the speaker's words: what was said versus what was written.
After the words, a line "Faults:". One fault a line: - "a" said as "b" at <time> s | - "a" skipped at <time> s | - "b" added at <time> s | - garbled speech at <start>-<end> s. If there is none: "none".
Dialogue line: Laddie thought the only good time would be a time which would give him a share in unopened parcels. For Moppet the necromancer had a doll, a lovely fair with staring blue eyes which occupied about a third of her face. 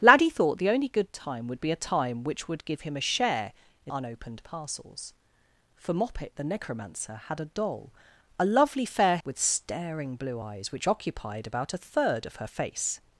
Laddie thought the only good time would be a time which would give him a share in unopened parcels. For Moppet the necromancer had a doll, a lovely fair with staring blue eyes which occupied about a third of her face.
Faults:
none